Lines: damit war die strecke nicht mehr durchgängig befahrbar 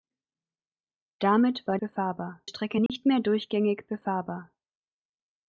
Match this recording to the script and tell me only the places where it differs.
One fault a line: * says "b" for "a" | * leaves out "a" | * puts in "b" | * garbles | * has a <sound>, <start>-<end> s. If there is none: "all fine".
* says "befahrbar" for "die"
* has a dropout, 2.9-2.9 s